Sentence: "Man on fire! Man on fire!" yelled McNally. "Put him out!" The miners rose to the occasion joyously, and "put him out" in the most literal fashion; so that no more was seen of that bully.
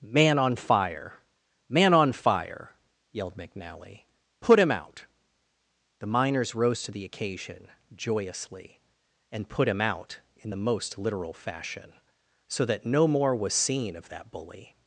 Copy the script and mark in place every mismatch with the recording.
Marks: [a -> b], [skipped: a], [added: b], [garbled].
"Man on fire! Man on fire!" yelled McNally. "Put him out!" The miners rose to the occasion joyously, and "put him out" in the most literal fashion; so that no more was seen of that bully.